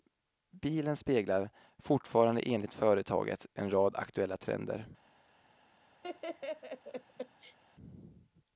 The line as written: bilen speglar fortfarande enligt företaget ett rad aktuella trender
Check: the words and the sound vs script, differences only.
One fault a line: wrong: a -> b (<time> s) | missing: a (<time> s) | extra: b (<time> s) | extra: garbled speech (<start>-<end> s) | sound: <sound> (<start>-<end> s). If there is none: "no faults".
wrong: ett -> en (3.5 s)
sound: laugh (6.0-7.6 s)